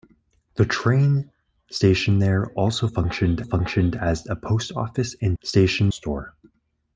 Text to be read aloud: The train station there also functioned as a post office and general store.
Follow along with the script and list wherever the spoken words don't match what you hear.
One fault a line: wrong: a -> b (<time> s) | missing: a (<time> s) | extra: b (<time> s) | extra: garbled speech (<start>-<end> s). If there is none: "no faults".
extra: functioned (3.4 s)
wrong: general -> station (5.4 s)